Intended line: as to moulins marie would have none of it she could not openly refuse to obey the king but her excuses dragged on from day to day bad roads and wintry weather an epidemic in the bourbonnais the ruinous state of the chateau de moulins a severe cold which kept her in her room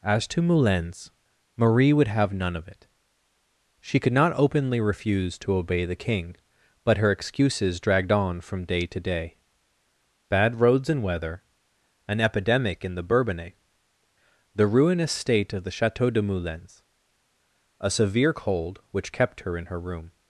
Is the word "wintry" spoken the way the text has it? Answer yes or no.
no